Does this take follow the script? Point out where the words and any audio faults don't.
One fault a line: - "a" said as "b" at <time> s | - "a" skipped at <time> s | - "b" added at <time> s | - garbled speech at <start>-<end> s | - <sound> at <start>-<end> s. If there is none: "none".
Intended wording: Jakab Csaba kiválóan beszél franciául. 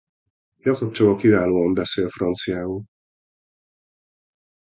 none